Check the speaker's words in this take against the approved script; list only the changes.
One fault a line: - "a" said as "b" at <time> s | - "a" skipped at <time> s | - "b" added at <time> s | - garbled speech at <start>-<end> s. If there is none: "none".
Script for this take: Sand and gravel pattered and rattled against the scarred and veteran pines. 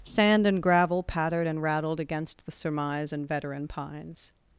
- "scarred" said as "surmise" at 2.5 s